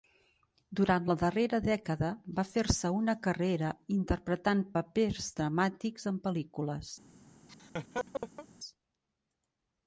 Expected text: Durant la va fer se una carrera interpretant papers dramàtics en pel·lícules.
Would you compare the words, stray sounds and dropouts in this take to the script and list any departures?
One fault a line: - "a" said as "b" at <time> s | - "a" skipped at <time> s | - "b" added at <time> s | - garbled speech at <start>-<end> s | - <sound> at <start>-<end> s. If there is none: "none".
- "darrera dècada" added at 1.2 s
- laugh at 7.5-8.5 s